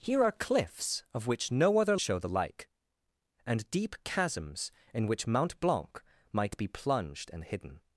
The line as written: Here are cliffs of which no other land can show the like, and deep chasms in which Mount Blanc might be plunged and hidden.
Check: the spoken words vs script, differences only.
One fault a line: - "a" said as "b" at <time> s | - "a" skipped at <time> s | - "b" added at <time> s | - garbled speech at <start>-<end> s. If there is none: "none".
- "land can" skipped at 1.9 s